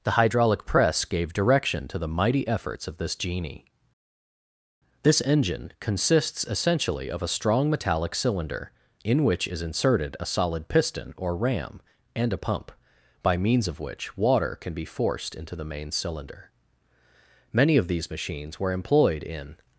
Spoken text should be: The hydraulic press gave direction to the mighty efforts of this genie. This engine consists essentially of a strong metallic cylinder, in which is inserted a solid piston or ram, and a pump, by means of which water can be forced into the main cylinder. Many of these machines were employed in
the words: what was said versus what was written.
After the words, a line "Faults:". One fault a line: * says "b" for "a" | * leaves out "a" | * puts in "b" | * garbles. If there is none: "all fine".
The hydraulic press gave direction to the mighty efforts of this genie. This engine consists essentially of a strong metallic cylinder, in which is inserted a solid piston or ram, and a pump, by means of which water can be forced into the main cylinder. Many of these machines were employed in
Faults:
all fine